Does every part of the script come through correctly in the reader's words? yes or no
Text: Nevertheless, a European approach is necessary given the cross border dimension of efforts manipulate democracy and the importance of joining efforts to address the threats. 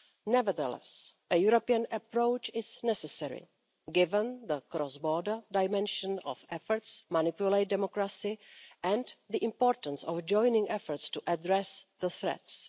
yes